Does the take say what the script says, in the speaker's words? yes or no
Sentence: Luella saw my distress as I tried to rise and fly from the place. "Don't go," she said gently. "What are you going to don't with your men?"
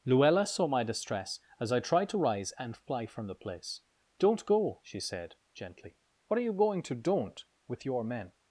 yes